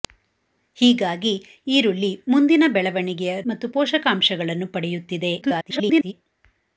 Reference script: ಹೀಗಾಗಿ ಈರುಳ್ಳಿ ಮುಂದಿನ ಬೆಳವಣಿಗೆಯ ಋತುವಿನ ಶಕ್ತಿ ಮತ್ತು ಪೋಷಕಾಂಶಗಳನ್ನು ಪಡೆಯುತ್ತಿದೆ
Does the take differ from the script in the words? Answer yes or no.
yes